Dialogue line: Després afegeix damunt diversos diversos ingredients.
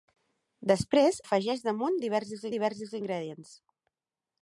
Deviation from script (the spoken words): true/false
false